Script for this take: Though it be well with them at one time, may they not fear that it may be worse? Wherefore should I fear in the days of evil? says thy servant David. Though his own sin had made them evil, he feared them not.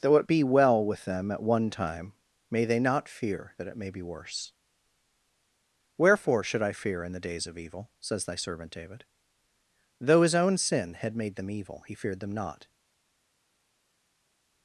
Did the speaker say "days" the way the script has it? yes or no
yes